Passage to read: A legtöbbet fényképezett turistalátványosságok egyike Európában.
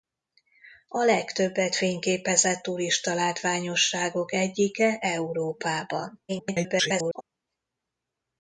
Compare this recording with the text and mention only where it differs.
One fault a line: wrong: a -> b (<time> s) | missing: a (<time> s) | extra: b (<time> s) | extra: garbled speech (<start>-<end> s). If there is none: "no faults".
extra: garbled speech (6.3-7.2 s)